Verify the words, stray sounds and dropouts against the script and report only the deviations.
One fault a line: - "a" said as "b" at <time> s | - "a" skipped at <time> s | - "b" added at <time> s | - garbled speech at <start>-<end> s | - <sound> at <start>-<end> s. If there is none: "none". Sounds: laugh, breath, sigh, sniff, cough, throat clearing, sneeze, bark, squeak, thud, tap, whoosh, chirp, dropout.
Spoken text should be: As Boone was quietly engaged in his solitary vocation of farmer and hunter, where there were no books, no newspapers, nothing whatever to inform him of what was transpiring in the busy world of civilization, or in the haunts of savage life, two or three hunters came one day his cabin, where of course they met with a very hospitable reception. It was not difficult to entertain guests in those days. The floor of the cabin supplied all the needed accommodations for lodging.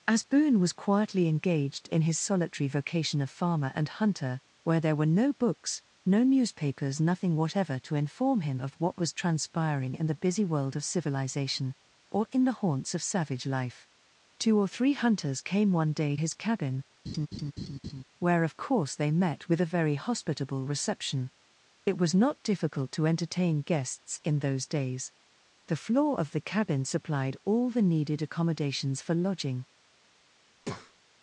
- laugh at 17.0-18.0 s
- breath at 30.6-31.0 s